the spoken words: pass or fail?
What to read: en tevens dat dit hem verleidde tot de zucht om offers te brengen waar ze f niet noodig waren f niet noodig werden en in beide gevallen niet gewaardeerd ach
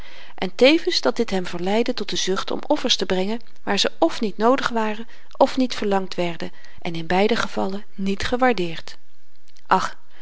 fail